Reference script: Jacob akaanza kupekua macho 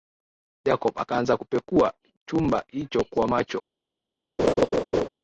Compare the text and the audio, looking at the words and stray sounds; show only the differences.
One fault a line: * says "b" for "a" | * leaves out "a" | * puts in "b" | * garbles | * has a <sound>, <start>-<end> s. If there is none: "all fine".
* puts in "chumba hicho kwa"
* has a laugh, 4.4-5.1 s